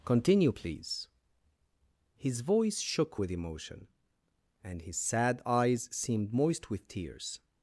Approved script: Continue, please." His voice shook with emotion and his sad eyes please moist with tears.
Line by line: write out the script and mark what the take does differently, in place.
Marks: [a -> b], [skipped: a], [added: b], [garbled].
Continue, please." His voice shook with emotion and his sad eyes [please -> seemed] moist with tears.